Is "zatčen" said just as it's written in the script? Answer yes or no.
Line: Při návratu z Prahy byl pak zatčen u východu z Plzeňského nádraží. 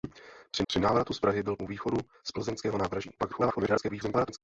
no